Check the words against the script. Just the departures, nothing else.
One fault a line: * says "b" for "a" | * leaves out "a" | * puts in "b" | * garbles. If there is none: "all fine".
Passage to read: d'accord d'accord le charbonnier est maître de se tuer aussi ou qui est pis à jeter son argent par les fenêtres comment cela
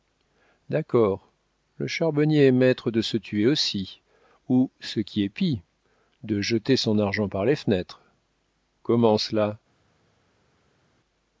* leaves out "d'accord"
* puts in "ce"
* says "de" for "à"